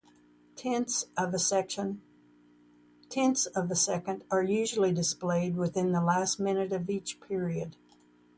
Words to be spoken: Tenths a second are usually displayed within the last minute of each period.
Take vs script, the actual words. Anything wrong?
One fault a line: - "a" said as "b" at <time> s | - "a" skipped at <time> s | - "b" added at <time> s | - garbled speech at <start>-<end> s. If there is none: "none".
- "of" added at 1.1 s